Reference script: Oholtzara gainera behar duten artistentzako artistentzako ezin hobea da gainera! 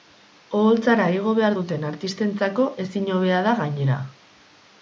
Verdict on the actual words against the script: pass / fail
fail